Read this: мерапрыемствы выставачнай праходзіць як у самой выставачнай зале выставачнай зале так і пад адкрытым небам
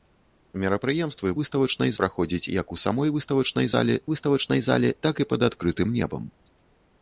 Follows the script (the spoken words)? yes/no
yes